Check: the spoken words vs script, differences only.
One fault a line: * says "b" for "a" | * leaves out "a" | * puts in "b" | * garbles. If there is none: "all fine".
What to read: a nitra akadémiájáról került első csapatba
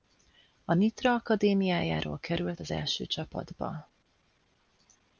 * puts in "az"